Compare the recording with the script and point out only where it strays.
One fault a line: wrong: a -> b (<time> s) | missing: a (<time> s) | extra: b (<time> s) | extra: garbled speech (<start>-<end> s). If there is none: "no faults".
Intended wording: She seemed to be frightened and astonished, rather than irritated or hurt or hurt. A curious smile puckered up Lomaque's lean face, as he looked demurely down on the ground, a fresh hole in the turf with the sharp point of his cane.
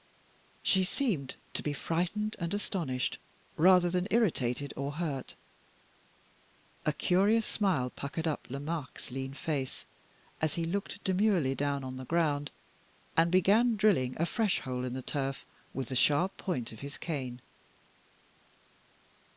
missing: or hurt (5.4 s)
extra: and began drilling (13.2 s)